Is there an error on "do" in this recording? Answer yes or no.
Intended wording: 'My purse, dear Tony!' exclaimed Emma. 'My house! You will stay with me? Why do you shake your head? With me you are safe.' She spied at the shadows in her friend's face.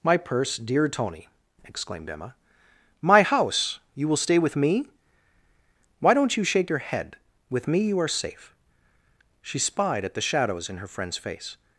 yes